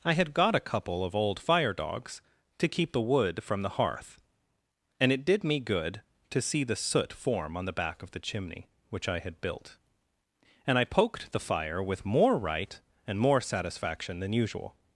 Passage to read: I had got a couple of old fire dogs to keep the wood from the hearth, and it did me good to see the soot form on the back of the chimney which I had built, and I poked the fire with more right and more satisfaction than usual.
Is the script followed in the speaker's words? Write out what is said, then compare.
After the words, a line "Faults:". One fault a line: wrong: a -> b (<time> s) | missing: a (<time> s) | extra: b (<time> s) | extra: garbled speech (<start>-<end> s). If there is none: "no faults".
I had got a couple of old fire dogs to keep the wood from the hearth, and it did me good to see the soot form on the back of the chimney which I had built, and I poked the fire with more right and more satisfaction than usual.
Faults:
no faults